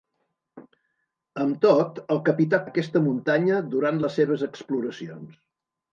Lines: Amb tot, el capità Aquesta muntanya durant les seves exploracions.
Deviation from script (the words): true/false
false